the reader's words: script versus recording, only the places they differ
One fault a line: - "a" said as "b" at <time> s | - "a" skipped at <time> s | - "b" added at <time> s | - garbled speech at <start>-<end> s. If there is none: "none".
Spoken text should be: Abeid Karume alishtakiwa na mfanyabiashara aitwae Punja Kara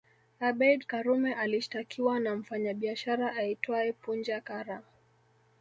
none